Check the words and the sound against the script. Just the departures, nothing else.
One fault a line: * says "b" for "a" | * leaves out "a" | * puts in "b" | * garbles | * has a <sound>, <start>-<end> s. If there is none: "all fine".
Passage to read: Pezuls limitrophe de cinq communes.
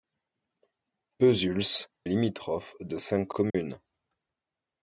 * has a dropout, 3.5-3.5 s